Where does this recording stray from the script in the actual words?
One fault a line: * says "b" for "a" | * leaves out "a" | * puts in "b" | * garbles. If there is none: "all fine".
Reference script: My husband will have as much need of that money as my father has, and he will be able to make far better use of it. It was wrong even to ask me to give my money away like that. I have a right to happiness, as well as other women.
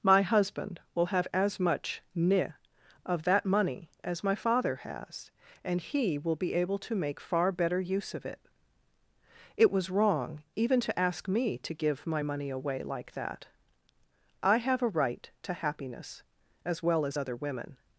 * says "ne" for "need"